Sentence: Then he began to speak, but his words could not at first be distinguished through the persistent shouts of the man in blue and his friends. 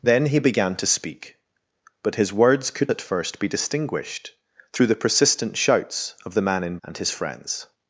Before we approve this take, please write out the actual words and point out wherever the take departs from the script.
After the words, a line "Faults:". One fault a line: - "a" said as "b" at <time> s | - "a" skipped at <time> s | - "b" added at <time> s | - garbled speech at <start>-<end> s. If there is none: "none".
Then he began to speak, but his words could at first be distinguished through the persistent shouts of the man in and his friends.
Faults:
- "not" skipped at 2.9 s
- "blue" skipped at 6.8 s